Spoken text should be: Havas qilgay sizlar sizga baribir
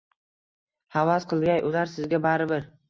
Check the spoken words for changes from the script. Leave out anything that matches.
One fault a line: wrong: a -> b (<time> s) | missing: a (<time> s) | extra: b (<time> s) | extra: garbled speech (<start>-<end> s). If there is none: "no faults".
wrong: sizlar -> ular (1.7 s)